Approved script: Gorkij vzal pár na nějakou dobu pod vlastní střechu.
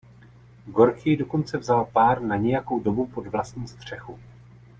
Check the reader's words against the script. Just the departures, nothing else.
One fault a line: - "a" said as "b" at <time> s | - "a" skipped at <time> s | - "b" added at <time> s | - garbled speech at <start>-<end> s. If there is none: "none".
- "dokonce" added at 1.1 s